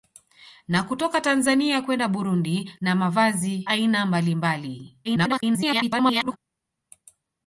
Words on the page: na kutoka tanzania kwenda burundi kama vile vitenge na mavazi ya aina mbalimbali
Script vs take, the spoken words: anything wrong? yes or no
yes